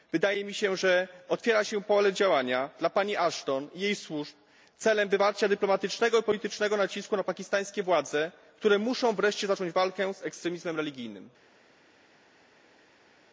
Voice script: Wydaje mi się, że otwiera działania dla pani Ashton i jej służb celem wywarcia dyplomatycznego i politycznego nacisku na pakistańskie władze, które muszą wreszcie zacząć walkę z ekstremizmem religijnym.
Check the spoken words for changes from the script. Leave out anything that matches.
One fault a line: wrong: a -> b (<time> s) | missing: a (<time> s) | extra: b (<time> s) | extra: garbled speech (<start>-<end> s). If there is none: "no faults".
extra: się pole (1.6 s)